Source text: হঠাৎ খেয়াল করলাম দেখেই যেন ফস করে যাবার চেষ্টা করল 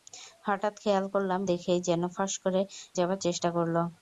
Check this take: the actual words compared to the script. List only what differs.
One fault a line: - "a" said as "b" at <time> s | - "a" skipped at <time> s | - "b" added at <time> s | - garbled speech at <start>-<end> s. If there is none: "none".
none